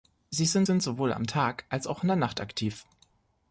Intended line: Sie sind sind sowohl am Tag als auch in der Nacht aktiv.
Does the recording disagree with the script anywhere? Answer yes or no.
no